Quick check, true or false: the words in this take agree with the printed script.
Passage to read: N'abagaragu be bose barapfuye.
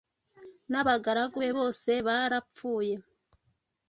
true